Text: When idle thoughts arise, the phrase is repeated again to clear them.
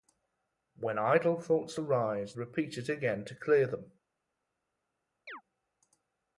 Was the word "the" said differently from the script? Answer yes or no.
yes